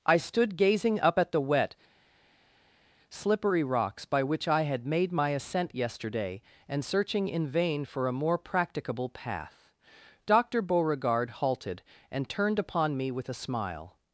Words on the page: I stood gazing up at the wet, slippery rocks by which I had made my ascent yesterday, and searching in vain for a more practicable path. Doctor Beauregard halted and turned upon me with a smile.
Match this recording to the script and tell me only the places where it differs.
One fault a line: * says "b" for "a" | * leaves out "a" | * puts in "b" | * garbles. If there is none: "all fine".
all fine